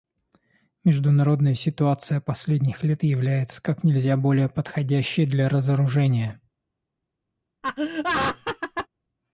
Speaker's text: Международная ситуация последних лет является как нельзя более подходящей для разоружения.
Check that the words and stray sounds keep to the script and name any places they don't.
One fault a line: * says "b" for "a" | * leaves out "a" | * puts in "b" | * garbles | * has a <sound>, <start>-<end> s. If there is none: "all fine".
* has a laugh, 7.6-8.9 s